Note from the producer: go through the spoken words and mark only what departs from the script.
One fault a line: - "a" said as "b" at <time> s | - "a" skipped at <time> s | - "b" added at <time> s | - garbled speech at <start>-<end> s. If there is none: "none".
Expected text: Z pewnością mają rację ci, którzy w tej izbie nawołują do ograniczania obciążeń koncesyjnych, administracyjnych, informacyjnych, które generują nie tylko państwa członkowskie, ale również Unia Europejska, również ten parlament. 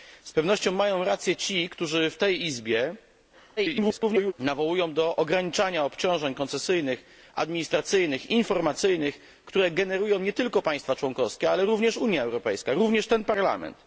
- garbled speech at 3.6-4.3 s